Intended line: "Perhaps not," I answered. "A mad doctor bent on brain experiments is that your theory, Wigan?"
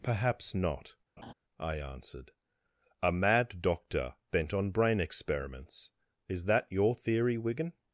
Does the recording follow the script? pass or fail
pass